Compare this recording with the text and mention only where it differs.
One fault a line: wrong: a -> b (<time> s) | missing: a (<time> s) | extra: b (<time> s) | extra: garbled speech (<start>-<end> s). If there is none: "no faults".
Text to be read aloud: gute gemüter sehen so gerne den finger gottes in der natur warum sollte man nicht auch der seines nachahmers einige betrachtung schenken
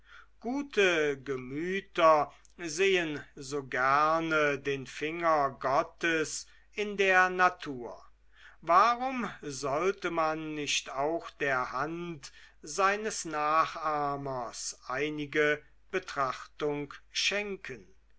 extra: hand (11.7 s)